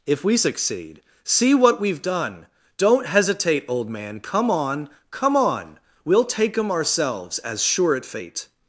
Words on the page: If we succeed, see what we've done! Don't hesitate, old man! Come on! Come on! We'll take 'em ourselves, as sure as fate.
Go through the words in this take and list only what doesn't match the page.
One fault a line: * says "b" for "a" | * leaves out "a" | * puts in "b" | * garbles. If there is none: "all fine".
* says "at" for "as"